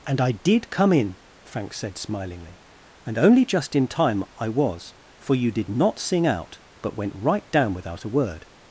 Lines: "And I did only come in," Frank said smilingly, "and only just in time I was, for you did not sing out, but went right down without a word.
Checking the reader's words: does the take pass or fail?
fail